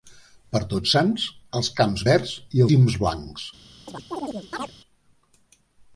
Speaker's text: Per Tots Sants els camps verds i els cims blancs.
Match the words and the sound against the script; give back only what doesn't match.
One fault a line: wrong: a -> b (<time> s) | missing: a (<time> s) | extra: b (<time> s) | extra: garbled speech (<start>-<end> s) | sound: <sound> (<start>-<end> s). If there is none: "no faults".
missing: els (2.6 s)
sound: chirp (3.9-4.7 s)